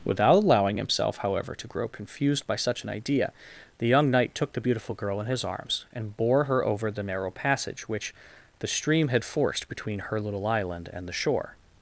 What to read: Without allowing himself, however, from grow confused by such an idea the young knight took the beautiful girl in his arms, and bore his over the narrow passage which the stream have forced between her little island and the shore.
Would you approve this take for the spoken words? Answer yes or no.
no